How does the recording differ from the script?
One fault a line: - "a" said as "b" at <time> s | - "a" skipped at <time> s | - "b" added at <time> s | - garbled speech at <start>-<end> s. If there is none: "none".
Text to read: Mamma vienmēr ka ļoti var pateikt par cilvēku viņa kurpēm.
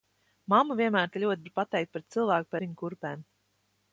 none